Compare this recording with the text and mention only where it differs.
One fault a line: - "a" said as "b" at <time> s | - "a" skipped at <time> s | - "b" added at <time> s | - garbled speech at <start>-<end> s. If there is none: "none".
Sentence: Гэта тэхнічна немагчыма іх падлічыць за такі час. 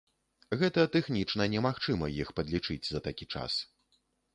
none